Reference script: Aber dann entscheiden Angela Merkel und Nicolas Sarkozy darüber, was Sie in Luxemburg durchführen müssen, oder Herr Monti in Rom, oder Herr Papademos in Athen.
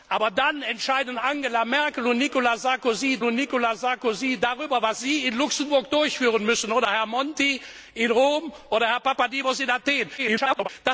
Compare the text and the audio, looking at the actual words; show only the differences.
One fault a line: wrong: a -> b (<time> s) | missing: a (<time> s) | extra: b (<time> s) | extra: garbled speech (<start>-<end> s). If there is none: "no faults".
extra: und Nicolas Sarkozy (3.2 s)
extra: garbled speech (10.2-10.7 s)